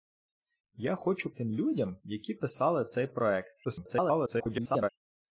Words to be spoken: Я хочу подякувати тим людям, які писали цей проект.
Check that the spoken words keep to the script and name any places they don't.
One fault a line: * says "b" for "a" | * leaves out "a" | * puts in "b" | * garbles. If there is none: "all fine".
* leaves out "подякувати"
* garbles